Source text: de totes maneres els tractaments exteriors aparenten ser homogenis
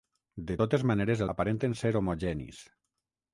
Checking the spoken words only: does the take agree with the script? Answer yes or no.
no